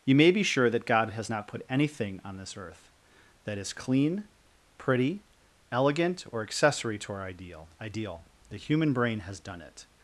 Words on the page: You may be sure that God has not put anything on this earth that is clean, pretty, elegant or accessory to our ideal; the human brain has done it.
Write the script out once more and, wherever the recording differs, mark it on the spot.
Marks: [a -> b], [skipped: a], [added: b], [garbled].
You may be sure that God has not put anything on this earth that is clean, pretty, elegant or accessory to our ideal; [added: ideal] the human brain has done it.